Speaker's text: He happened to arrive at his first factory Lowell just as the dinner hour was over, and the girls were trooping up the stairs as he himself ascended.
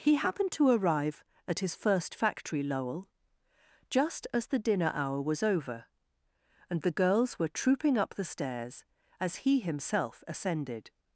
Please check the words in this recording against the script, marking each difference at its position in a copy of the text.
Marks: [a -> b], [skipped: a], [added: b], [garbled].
He happened to arrive at his first factory Lowell just as the dinner hour was over, and the girls were trooping up the stairs as he himself ascended.